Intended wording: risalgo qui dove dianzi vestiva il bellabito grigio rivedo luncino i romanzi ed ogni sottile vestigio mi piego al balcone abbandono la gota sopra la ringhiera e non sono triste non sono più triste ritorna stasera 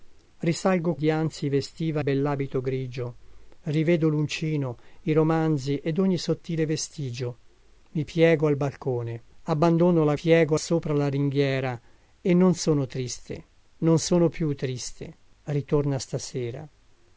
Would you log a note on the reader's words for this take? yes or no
yes